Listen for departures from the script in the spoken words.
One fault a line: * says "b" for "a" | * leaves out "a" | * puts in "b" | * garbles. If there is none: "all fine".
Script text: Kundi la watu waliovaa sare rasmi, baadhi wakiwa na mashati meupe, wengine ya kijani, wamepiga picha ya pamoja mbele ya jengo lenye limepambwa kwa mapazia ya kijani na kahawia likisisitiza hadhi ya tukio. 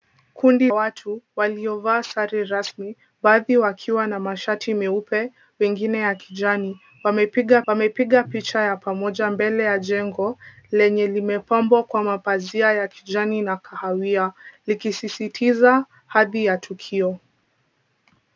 * leaves out "la"
* puts in "wamepiga"